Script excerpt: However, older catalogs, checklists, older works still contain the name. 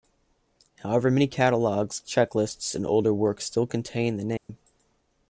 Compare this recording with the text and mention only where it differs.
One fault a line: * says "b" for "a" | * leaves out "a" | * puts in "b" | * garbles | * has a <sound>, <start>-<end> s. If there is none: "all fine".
* says "many" for "older"
* puts in "and"
* has a dropout, 4.4-4.5 s